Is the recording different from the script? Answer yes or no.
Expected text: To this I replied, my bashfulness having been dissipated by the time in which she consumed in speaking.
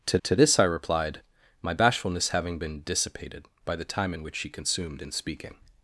yes